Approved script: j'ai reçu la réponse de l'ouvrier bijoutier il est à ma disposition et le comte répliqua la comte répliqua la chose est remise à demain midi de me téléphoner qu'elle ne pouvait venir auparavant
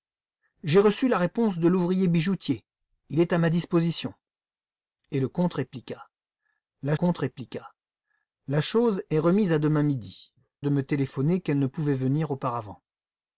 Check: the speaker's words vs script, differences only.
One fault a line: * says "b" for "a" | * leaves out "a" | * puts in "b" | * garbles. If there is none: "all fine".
all fine